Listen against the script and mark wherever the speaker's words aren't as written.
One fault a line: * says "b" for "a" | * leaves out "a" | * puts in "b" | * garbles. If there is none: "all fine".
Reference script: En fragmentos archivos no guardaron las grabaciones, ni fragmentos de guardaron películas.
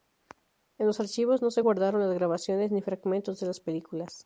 * says "los" for "fragmentos"
* puts in "se"
* says "las" for "guardaron"